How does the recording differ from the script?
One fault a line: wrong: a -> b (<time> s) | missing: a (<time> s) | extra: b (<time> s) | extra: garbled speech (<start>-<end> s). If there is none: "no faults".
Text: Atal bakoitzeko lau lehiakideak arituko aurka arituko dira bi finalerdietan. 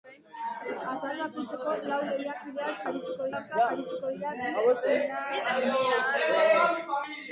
no faults